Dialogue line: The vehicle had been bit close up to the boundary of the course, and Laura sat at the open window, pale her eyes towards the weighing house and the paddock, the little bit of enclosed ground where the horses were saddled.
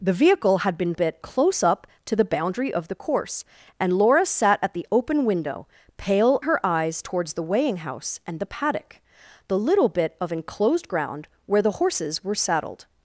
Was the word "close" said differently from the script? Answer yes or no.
no